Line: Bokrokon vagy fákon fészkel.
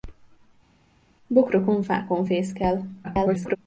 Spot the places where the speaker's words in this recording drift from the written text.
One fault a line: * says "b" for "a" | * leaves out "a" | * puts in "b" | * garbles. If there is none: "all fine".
* leaves out "vagy"
* garbles